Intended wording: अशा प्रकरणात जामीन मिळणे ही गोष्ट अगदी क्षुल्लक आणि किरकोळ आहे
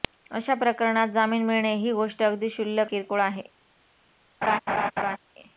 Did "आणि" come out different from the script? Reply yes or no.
yes